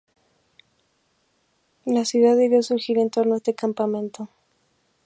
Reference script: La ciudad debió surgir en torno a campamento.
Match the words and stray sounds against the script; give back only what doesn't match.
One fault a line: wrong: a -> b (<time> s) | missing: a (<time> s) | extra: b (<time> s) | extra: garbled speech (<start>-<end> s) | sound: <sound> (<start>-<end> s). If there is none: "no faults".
extra: este (3.4 s)